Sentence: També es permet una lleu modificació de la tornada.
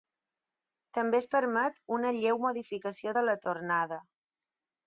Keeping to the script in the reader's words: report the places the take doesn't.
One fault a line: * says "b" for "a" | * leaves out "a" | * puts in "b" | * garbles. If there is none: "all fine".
all fine